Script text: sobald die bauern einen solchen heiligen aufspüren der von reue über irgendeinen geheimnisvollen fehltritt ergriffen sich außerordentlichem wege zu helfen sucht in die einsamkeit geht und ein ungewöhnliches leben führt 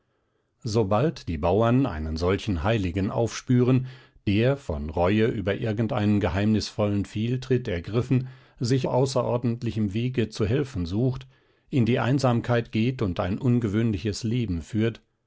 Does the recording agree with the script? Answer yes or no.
yes